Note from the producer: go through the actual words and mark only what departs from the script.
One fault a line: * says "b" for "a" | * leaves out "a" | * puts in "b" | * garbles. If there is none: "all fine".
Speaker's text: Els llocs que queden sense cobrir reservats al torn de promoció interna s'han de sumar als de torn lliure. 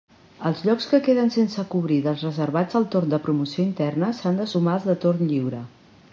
* puts in "dels"